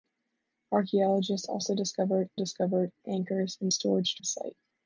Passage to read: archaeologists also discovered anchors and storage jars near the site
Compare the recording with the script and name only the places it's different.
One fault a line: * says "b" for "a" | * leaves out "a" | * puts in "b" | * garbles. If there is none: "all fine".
* puts in "discovered"
* leaves out "jars near"